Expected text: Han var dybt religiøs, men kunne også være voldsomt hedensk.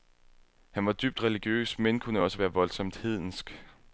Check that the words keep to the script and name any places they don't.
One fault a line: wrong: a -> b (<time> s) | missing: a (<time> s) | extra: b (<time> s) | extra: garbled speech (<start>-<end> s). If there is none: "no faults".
no faults